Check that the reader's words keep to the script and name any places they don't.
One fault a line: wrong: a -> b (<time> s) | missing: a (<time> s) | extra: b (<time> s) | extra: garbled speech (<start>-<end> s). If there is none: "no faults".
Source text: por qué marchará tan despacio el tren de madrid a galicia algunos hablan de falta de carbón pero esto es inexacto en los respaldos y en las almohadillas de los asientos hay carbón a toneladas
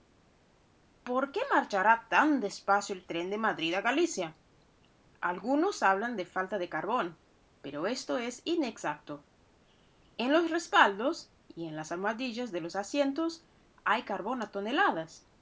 no faults